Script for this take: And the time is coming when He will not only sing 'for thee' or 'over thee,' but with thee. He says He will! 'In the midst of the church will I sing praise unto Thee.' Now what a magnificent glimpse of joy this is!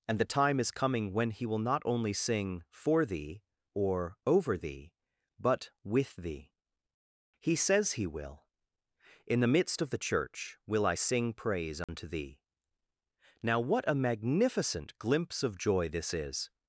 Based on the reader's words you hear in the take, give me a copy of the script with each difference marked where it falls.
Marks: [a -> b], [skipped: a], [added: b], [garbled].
And the time is coming when He will not only sing 'for thee' or 'over thee,' but with thee. He says He will! 'In the midst of the church will I sing praise unto Thee.' Now what a magnificent glimpse of joy this is!